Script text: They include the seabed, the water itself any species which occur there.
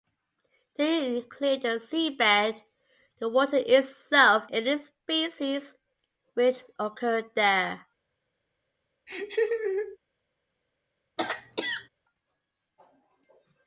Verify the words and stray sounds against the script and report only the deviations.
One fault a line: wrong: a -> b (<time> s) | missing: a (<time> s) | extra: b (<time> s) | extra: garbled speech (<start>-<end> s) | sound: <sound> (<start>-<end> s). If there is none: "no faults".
sound: laugh (9.1-10.0 s)
sound: throat clearing (11.2-11.9 s)